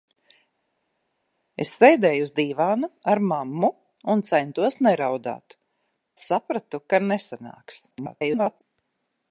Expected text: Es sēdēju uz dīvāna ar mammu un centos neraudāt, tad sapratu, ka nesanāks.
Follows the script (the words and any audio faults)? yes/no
no